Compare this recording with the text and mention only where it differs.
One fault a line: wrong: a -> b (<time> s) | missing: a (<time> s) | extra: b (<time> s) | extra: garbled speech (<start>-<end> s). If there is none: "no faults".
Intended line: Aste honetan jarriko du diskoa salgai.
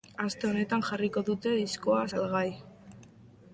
wrong: du -> dute (1.3 s)